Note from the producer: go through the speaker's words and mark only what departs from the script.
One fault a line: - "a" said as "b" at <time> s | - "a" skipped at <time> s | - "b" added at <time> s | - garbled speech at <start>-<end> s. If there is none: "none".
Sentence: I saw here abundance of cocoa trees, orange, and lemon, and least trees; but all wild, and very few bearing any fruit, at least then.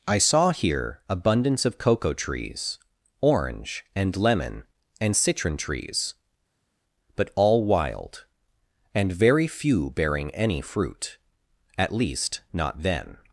- "least" said as "citron" at 5.1 s
- "not" added at 12.5 s